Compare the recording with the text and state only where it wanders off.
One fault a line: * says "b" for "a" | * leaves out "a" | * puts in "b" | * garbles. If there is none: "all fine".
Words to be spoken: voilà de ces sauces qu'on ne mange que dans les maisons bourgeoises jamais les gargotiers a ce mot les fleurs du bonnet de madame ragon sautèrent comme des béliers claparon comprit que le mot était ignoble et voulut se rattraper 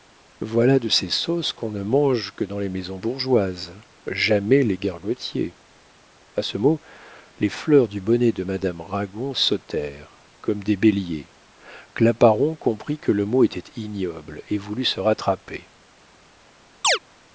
all fine